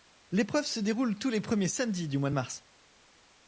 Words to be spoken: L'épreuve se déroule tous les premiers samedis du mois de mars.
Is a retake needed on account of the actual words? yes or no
no